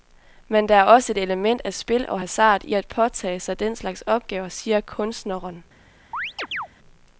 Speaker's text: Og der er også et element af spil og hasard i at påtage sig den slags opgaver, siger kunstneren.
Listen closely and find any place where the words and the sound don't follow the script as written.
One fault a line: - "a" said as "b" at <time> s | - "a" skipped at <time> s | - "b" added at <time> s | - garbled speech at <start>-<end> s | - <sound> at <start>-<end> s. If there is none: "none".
- "Og" said as "Men" at 0.5 s
- chirp at 6.1-6.7 s